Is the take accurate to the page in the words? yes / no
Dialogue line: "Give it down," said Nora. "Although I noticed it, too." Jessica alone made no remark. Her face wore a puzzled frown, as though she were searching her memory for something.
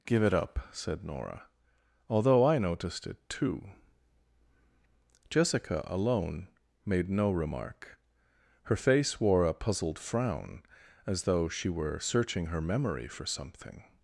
no